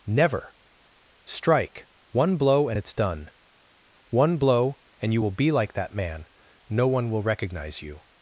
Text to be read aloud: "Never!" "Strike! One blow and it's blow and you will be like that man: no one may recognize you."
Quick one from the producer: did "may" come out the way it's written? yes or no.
no